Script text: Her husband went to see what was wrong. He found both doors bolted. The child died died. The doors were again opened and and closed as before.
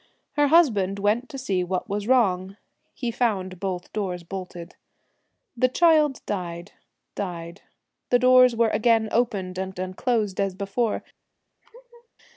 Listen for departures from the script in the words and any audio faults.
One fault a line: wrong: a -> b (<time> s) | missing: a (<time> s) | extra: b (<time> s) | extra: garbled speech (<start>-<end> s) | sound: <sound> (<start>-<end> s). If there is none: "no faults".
sound: laugh (11.6-12.1 s)